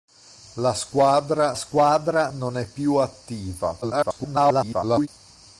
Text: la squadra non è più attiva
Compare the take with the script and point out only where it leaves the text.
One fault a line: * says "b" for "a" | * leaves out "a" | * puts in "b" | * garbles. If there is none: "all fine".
* puts in "squadra"
* garbles